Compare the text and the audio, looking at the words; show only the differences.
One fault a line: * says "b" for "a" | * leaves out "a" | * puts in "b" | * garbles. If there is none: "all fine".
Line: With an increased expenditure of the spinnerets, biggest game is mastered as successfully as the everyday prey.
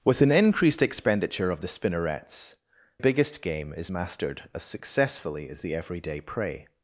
all fine